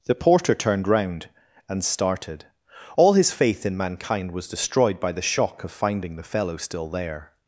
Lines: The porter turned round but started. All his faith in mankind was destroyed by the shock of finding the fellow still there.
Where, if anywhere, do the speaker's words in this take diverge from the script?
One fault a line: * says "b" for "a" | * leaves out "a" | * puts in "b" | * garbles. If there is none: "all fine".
* says "and" for "but"